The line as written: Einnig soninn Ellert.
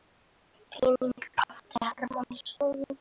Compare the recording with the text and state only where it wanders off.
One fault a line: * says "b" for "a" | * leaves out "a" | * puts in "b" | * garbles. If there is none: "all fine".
* puts in "átti Hermann"